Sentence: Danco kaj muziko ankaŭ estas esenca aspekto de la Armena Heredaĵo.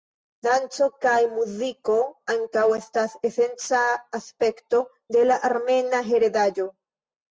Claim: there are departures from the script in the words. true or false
false